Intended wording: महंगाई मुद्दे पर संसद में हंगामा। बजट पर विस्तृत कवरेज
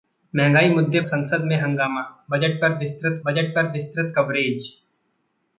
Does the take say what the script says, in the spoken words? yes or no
no